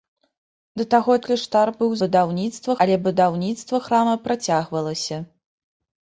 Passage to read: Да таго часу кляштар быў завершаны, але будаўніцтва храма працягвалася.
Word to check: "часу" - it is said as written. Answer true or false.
false